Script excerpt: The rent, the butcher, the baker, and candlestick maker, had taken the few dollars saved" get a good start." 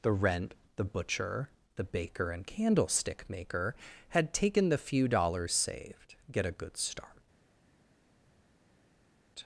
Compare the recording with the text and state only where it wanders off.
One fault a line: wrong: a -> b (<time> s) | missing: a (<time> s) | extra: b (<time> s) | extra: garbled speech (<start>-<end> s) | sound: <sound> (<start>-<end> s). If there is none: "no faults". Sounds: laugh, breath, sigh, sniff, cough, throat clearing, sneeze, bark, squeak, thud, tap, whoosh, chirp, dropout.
no faults